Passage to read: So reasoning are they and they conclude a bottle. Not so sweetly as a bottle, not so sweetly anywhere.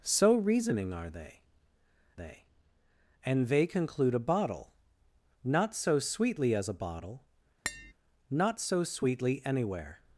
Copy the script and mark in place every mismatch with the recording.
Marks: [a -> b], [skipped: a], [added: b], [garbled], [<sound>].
So reasoning are they [added: they] and they conclude a bottle. Not so sweetly as a bottle, [tap] not so sweetly anywhere.